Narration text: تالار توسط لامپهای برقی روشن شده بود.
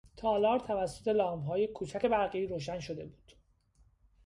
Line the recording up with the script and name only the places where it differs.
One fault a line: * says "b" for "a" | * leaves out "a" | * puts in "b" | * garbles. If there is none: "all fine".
* puts in "کوچک"